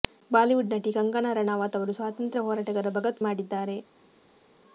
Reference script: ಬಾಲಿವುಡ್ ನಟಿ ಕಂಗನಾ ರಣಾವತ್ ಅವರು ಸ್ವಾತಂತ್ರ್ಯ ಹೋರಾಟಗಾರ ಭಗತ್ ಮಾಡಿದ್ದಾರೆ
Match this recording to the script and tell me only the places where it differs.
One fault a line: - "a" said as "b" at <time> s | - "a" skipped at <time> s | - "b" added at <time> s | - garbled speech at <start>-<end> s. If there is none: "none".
none